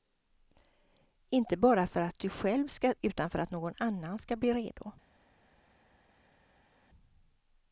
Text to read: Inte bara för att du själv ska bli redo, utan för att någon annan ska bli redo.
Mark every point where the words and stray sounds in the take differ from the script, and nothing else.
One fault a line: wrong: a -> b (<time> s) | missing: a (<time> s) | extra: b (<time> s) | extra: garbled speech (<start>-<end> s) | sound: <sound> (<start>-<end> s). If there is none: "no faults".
missing: bli redo (2.9 s)